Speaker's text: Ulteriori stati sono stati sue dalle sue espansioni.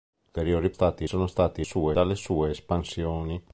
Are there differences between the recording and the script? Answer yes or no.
no